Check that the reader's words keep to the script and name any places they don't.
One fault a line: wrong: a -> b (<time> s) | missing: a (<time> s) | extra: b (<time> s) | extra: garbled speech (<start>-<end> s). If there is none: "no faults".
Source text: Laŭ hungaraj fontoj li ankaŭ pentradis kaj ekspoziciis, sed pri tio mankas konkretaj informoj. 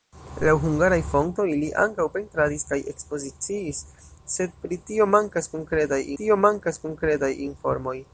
extra: tio mankas konkretaj (6.2 s)